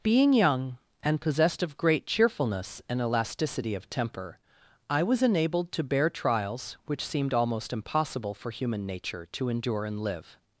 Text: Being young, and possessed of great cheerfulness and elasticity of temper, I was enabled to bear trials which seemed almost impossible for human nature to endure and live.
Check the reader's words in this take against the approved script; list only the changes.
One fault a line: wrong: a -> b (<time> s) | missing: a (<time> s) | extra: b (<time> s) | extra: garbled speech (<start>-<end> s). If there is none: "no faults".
no faults